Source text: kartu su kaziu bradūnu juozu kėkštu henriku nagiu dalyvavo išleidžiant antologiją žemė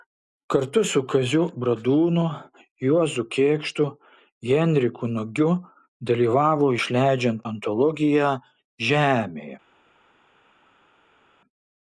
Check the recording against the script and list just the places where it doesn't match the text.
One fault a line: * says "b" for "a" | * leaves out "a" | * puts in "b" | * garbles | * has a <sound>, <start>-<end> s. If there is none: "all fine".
all fine